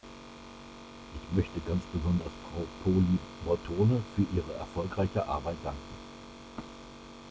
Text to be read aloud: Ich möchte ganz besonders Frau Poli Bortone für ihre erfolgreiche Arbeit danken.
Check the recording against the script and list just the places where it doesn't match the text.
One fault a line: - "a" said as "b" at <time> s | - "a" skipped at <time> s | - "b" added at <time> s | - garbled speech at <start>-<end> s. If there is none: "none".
none